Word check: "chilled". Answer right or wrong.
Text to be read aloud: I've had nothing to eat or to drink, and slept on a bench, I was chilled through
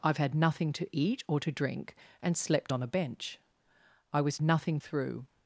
wrong